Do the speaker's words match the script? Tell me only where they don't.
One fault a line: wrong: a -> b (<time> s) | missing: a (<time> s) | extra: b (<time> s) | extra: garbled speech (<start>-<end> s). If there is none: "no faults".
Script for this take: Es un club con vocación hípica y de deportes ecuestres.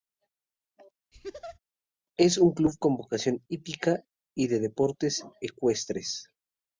no faults